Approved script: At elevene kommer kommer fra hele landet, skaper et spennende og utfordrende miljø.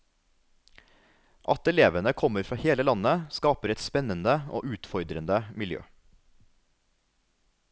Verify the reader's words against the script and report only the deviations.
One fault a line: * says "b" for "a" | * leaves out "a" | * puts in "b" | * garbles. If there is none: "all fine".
* leaves out "kommer"